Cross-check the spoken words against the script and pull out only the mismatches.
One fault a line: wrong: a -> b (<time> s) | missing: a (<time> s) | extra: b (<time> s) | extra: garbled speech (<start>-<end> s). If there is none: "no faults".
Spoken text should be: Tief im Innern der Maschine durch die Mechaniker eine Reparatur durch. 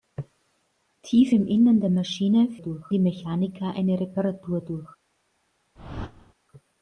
no faults